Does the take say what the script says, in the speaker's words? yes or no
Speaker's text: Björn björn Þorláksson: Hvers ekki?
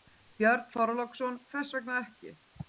no